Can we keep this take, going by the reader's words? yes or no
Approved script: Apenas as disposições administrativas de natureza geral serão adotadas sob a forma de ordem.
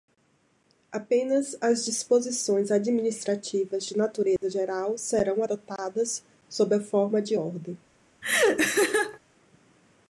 yes